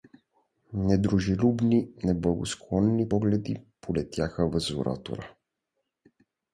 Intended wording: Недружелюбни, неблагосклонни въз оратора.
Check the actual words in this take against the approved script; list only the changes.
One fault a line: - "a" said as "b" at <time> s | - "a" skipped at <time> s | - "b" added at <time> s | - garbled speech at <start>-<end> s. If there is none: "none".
- "погледи полетяха" added at 3.1 s